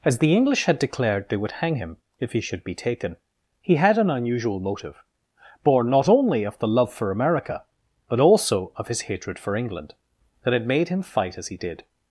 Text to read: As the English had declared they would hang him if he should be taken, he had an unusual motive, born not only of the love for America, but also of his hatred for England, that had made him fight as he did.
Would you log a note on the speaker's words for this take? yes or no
no